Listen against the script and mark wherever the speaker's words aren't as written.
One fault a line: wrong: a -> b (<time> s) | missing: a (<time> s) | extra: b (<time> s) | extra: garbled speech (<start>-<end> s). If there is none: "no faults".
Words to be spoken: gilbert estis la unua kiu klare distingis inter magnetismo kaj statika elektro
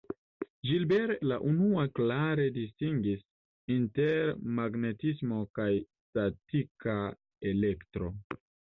missing: estis (1.2 s)
missing: kiu (1.8 s)